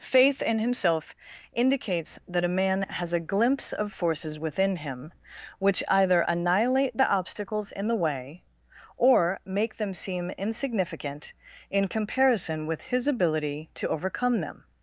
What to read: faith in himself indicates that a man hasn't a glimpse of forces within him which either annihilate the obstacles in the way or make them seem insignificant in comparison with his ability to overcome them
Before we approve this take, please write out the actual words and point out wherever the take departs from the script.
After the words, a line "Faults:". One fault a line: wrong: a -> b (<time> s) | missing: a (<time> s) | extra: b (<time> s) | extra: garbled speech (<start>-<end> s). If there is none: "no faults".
faith in himself indicates that a man has a glimpse of forces within him which either annihilate the obstacles in the way or make them seem insignificant in comparison with his ability to overcome them
Faults:
wrong: hasn't -> has (2.8 s)